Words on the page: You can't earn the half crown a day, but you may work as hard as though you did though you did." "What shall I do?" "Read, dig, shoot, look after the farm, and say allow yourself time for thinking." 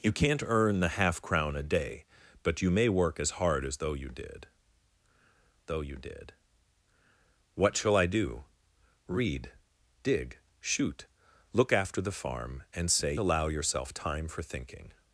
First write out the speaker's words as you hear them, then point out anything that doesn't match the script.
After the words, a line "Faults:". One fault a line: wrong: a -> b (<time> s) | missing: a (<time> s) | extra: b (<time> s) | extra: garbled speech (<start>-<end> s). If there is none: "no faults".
You can't earn the half crown a day, but you may work as hard as though you did though you did." "What shall I do?" "Read, dig, shoot, look after the farm, and say allow yourself time for thinking."
Faults:
no faults